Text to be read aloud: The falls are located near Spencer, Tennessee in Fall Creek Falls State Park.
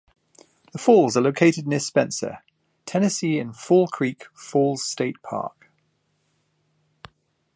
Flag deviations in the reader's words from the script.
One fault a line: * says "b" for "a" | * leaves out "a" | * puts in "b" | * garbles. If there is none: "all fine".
all fine